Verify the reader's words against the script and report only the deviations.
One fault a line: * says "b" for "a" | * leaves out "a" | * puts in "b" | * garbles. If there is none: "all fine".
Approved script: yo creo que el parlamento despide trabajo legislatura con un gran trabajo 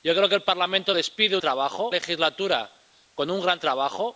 all fine